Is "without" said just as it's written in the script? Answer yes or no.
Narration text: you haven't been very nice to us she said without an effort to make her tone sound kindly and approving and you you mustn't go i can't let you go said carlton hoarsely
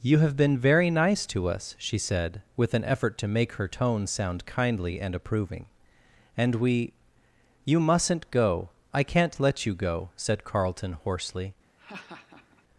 no